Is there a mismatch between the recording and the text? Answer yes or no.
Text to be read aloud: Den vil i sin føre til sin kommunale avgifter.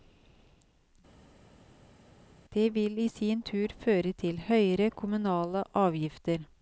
yes